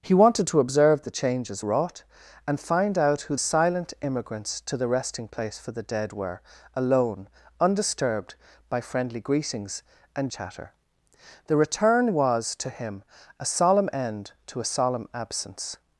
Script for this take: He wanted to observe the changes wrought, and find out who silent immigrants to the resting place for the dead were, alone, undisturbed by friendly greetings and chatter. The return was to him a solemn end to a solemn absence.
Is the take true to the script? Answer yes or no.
yes